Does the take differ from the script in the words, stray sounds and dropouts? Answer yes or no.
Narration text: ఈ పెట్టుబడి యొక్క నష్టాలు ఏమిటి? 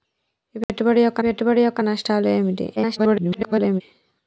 yes